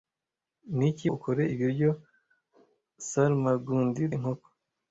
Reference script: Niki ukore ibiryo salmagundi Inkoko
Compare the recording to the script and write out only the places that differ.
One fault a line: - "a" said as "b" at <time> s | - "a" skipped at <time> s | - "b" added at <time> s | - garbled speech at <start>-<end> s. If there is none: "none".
none